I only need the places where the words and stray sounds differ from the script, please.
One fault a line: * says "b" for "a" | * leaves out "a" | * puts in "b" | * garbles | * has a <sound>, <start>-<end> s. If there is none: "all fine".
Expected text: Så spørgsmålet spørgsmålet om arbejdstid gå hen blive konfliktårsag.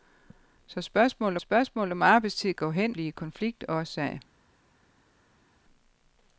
all fine